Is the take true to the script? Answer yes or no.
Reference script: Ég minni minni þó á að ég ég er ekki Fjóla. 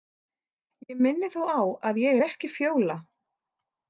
no